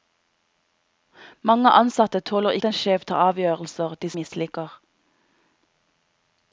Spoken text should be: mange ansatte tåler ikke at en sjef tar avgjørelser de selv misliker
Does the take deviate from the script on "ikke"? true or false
true